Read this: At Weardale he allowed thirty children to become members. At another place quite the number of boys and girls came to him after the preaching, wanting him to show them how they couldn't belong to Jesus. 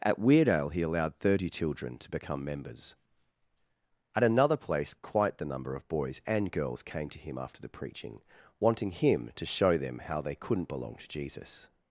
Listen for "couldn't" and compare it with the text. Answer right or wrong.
right